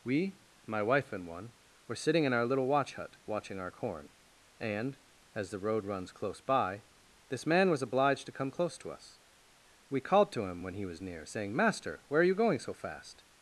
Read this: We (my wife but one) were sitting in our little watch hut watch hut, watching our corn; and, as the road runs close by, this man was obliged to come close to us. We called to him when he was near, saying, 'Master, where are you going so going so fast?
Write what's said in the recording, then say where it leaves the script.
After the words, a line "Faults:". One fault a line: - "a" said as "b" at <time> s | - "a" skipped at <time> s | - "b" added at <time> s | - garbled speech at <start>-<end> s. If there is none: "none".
We (my wife and one) were sitting in our little watch hut, watching our corn; and, as the road runs close by, this man was obliged to come close to us. We called to him when he was near, saying, 'Master, where are you going so fast?
Faults:
- "but" said as "and" at 1.1 s
- "watch hut" skipped at 3.2 s
- "going so" skipped at 12.7 s